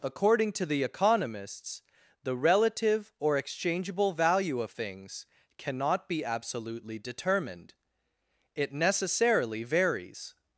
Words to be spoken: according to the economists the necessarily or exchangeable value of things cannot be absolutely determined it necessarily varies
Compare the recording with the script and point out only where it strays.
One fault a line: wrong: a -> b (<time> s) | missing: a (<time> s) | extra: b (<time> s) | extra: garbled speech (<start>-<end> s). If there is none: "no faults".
wrong: necessarily -> relative (2.4 s)